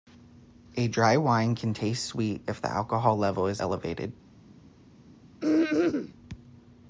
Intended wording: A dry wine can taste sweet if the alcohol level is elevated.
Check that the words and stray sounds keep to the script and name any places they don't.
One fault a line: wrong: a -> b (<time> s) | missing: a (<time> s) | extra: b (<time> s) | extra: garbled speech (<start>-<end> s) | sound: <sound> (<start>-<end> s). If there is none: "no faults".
sound: throat clearing (5.4-6.1 s)